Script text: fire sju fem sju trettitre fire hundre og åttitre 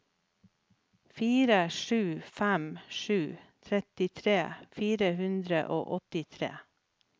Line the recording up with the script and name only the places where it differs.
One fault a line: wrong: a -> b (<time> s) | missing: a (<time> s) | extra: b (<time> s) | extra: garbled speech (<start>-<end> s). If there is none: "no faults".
no faults